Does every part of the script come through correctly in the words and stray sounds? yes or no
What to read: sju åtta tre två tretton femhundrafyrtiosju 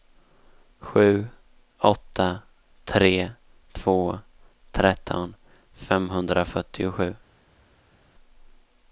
yes